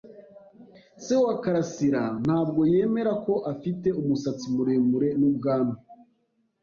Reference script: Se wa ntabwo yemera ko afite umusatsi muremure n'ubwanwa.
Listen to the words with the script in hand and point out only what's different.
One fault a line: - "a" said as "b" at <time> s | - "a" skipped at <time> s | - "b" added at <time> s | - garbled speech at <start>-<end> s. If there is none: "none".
- "karasira" added at 1.4 s